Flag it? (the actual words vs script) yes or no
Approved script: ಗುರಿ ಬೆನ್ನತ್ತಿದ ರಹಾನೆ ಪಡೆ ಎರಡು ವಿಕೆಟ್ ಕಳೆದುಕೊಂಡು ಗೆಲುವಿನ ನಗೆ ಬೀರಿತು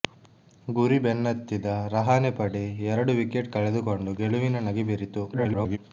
yes